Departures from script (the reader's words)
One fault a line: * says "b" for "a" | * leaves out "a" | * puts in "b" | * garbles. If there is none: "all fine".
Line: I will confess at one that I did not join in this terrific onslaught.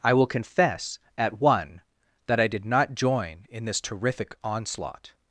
all fine